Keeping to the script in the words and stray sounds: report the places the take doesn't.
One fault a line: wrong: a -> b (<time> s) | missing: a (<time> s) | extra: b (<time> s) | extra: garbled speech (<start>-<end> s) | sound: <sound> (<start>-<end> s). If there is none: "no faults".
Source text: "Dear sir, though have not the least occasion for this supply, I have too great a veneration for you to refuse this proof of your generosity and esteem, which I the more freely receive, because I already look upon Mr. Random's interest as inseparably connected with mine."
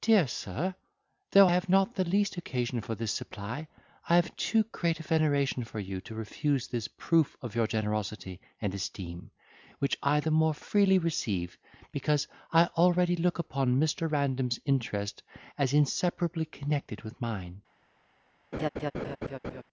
sound: laugh (18.5-19.6 s)